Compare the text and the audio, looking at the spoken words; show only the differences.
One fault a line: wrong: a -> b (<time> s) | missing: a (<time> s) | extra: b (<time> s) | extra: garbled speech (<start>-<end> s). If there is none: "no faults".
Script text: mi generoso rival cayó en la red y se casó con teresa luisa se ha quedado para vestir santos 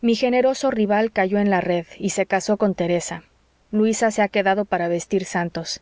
no faults